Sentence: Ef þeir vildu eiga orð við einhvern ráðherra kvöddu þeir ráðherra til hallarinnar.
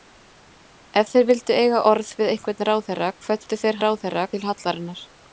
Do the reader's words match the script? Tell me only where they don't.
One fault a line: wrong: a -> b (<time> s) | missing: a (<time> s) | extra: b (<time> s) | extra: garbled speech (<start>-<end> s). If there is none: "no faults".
no faults